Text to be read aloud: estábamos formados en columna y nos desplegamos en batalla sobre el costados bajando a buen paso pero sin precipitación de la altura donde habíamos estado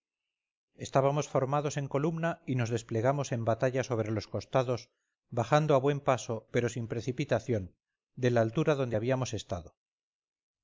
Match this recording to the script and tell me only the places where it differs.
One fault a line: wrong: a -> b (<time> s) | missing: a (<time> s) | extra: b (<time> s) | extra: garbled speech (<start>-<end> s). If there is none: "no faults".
wrong: el -> los (4.1 s)